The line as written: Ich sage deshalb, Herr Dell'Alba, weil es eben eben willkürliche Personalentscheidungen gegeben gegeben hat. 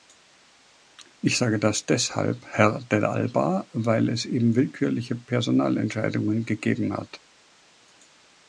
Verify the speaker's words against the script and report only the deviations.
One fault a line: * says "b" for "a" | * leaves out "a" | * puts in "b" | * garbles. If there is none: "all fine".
* puts in "das"
* leaves out "eben"
* leaves out "gegeben"